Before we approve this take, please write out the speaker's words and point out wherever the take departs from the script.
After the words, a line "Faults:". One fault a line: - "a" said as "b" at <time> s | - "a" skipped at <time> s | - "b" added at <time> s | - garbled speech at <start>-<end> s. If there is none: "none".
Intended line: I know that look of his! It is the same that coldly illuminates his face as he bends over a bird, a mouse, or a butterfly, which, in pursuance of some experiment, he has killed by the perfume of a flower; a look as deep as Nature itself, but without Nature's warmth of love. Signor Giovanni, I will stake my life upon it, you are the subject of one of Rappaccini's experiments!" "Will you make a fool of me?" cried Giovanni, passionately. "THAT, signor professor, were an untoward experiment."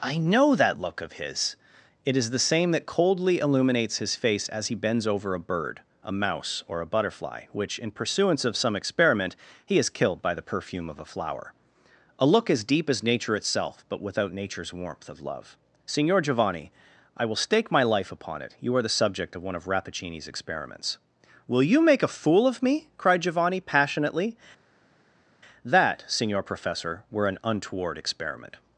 I know that look of his! It is the same that coldly illuminates his face as he bends over a bird, a mouse, or a butterfly, which, in pursuance of some experiment, he has killed by the perfume of a flower; a look as deep as Nature itself, but without Nature's warmth of love. Signor Giovanni, I will stake my life upon it, you are the subject of one of Rappaccini's experiments!" "Will you make a fool of me?" cried Giovanni, passionately. "THAT, signor professor, were an untoward experiment."
Faults:
none